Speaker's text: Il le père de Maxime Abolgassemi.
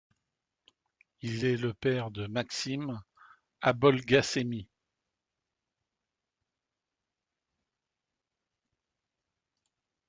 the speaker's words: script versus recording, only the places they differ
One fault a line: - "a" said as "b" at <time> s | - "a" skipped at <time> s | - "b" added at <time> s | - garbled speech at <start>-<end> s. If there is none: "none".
- "est" added at 1.4 s